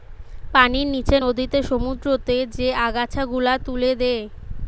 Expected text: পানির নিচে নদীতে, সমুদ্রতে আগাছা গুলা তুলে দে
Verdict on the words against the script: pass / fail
fail